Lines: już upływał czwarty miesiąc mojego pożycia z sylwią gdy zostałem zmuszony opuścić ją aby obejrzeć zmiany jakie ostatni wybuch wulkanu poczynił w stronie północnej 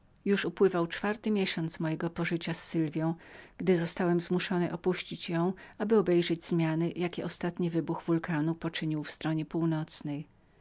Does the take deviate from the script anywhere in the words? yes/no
no